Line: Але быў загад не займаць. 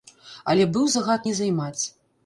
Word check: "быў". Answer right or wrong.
right